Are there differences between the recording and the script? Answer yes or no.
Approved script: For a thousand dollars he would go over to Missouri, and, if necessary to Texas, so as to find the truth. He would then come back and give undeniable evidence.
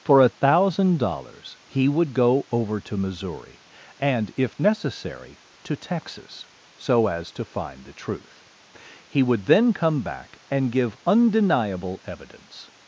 no